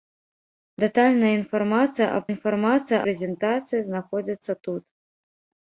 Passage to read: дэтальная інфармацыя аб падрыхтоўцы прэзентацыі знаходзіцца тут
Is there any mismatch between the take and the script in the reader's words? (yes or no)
yes